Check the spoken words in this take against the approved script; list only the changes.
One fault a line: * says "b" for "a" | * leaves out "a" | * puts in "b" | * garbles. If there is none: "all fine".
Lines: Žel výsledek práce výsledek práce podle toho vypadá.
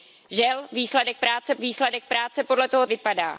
all fine